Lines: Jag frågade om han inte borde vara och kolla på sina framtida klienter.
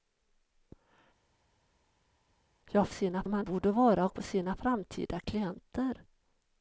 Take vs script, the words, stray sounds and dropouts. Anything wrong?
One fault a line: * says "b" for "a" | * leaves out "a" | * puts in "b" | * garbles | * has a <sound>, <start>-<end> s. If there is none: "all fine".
* says "sina" for "frågade"
* leaves out "inte"
* leaves out "kolla"